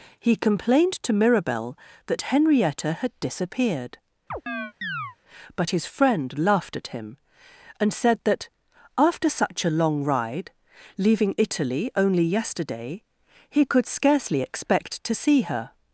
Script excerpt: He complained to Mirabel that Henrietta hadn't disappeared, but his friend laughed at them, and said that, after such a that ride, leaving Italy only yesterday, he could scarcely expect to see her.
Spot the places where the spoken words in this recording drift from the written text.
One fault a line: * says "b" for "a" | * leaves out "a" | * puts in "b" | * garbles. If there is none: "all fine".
* says "had" for "hadn't"
* says "him" for "them"
* says "long" for "that"